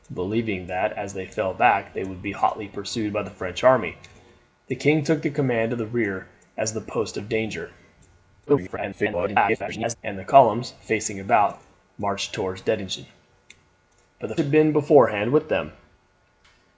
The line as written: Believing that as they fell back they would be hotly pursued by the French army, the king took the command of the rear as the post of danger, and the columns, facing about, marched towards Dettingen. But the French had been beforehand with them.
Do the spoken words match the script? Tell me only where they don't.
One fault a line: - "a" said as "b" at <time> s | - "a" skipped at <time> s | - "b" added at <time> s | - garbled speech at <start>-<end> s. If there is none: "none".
- garbled speech at 8.5-10.0 s
- "French" skipped at 14.4 s